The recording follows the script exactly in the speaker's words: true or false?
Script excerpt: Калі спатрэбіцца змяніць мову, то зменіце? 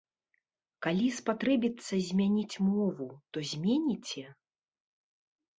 true